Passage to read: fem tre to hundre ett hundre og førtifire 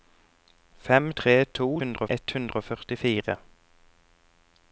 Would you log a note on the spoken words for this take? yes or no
no